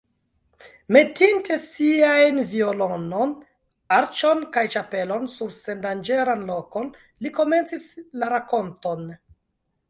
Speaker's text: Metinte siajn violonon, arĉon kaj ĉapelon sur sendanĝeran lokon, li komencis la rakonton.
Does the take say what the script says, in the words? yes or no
yes